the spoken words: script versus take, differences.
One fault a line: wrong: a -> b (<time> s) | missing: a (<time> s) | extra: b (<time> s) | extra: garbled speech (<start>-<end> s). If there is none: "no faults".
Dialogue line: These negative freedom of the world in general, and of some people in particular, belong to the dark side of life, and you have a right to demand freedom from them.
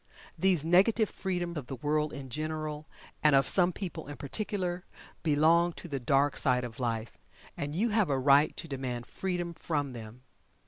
no faults